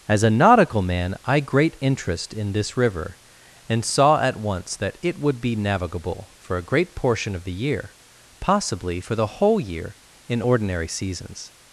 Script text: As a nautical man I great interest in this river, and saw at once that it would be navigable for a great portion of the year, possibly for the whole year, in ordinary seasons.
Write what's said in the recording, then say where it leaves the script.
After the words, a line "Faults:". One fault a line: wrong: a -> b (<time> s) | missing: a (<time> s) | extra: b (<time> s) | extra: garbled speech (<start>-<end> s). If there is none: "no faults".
As a nautical man I great interest in this river, and saw at once that it would be navigable for a great portion of the year, possibly for the whole year, in ordinary seasons.
Faults:
no faults